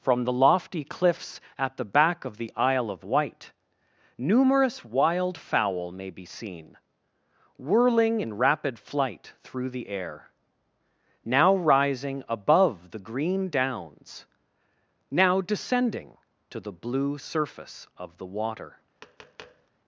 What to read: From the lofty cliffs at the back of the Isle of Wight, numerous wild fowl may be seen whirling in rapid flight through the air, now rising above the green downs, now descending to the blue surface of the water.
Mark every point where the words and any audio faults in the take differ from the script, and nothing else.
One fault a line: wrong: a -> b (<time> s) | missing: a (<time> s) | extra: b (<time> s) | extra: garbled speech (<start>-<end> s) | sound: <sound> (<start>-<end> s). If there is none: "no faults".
sound: tap (19.0-19.7 s)